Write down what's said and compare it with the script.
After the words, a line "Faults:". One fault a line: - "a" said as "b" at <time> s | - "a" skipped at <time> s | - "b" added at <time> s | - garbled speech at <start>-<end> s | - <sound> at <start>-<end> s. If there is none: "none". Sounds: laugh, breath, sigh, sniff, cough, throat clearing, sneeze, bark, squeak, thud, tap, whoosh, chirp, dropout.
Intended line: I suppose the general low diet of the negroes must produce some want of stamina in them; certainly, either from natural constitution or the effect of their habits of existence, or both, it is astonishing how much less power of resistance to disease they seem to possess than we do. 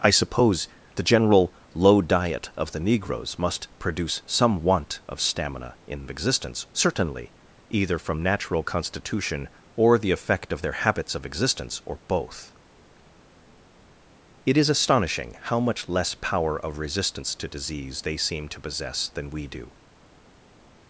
I suppose the general low diet of the negroes must produce some want of stamina in existence; certainly, either from natural constitution or the effect of their habits of existence, or both, it is astonishing how much less power of resistance to disease they seem to possess than we do.
Faults:
- "them" said as "existence" at 6.1 s